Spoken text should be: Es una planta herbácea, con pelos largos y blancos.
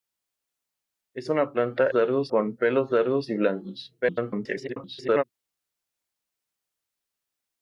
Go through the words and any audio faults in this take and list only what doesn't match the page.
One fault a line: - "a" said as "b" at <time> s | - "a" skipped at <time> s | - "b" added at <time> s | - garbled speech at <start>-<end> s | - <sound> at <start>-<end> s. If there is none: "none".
- "herbácea" said as "largos" at 1.9 s
- garbled speech at 4.0-5.2 s